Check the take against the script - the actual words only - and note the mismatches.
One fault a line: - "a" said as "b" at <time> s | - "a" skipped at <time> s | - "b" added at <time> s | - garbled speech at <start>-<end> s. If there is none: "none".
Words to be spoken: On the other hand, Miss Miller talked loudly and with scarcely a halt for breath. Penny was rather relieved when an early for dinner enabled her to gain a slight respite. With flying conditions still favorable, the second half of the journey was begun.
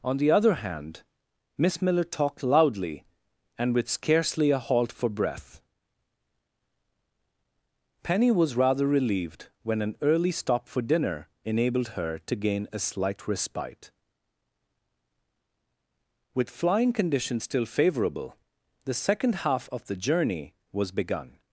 - "stop" added at 10.3 s